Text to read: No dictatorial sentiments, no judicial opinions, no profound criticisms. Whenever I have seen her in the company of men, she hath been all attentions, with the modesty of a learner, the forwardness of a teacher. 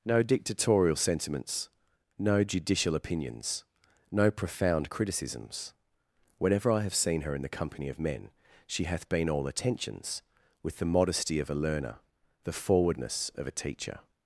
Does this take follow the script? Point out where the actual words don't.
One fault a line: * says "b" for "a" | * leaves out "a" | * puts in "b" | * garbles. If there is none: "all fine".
all fine